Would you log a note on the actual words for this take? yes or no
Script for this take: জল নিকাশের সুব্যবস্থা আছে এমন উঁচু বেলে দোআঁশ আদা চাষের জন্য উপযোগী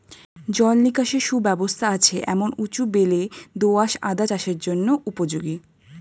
no